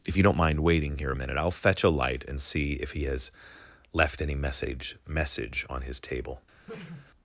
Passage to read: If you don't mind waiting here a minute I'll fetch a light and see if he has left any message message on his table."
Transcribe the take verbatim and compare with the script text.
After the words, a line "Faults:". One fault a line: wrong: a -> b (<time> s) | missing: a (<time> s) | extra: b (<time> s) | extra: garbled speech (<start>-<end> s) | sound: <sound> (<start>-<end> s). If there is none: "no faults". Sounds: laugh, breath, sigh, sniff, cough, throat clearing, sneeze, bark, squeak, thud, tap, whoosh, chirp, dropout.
If you don't mind waiting here a minute I'll fetch a light and see if he has left any message message on his table."
Faults:
sound: sneeze (6.7-7.1 s)